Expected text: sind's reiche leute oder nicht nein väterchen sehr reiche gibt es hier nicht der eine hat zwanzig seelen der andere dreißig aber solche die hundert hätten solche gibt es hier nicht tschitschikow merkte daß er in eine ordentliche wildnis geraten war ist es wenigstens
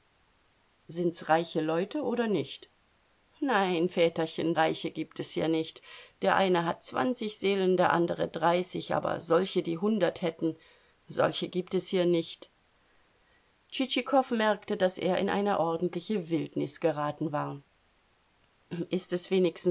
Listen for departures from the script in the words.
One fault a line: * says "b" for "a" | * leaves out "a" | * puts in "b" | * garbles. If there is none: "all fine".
* leaves out "sehr"